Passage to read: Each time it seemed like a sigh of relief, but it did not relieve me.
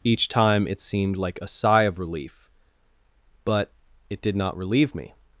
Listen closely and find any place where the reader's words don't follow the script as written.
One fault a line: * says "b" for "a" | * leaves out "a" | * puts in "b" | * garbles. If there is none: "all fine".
all fine